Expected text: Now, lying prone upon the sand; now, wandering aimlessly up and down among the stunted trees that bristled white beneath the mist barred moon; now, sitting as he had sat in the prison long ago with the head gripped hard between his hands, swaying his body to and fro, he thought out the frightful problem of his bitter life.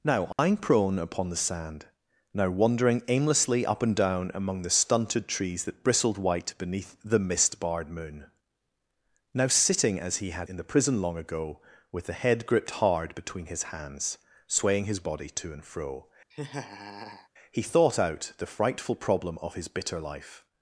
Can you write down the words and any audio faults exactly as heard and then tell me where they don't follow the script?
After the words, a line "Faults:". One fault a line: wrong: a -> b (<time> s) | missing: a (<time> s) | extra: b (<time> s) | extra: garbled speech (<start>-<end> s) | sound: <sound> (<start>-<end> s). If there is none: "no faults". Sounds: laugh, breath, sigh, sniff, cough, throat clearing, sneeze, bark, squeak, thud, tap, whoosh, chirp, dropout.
Now, lying prone upon the sand; now, wandering aimlessly up and down among the stunted trees that bristled white beneath the mist barred moon; now, sitting as he had in the prison long ago with the head gripped hard between his hands, swaying his body to and fro, he thought out the frightful problem of his bitter life.
Faults:
sound: dropout (0.3-0.4 s)
missing: sat (10.5 s)
sound: laugh (16.3-17.3 s)